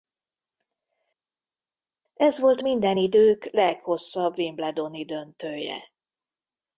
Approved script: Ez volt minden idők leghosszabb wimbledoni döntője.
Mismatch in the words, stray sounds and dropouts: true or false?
false